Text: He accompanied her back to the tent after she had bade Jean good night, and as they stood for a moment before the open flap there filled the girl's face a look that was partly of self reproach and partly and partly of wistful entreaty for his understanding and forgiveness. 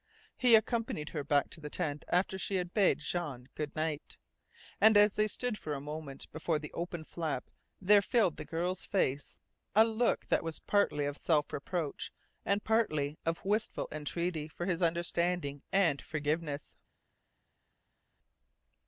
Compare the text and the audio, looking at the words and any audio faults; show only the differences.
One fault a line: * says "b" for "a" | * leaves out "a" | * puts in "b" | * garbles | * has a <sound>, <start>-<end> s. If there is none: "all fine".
* leaves out "and partly"